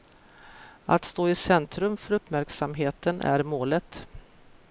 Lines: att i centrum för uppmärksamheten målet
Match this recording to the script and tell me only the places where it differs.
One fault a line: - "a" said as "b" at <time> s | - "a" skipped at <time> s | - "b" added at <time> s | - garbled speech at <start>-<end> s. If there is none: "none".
- "stå" added at 1.0 s
- "är" added at 3.2 s